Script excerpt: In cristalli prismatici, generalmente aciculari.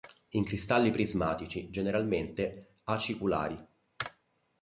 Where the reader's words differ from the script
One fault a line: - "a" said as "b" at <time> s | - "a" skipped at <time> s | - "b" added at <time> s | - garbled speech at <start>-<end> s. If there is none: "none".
none